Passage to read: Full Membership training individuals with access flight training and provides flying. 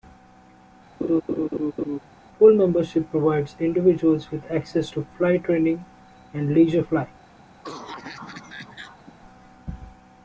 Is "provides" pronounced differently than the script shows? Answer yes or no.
yes